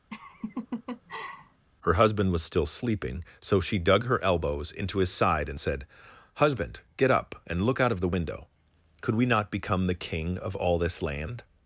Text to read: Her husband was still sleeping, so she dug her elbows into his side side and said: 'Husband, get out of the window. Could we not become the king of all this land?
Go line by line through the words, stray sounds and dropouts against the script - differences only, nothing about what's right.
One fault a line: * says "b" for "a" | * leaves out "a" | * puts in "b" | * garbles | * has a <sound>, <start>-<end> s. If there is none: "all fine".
* has a laugh, 0.1-1.7 s
* leaves out "side"
* puts in "up and look"